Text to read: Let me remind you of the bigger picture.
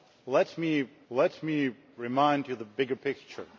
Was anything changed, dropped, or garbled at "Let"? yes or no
no